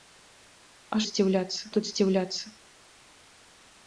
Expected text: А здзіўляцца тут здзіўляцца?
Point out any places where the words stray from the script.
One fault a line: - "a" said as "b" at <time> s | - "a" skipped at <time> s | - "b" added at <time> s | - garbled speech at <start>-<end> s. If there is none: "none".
none